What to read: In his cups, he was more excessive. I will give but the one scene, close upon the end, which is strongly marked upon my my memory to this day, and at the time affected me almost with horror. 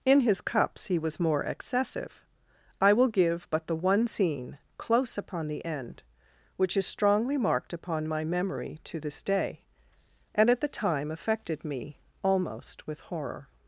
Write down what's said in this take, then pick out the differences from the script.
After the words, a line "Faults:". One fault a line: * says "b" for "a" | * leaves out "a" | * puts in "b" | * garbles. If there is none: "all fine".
In his cups, he was more excessive. I will give but the one scene, close upon the end, which is strongly marked upon my memory to this day, and at the time affected me almost with horror.
Faults:
* leaves out "my"